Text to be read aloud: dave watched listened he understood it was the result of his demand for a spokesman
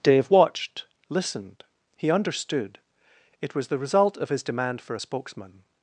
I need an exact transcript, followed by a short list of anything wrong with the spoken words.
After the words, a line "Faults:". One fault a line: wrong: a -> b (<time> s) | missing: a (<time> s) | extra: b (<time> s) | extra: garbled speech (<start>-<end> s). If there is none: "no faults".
dave watched listened he understood it was the result of his demand for a spokesman
Faults:
no faults